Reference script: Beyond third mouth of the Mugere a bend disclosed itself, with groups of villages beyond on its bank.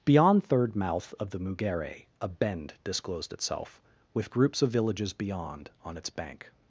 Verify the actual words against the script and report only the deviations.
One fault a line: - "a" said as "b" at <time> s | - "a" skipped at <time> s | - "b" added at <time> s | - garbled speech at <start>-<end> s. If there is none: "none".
none